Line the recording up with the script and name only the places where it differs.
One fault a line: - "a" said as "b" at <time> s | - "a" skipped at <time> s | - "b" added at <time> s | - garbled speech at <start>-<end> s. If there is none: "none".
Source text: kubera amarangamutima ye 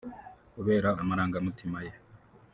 none